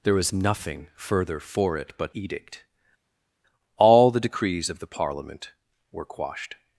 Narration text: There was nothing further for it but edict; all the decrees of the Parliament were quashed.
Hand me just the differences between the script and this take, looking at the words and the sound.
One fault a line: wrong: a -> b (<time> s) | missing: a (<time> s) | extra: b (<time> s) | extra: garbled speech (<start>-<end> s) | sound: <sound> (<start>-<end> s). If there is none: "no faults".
no faults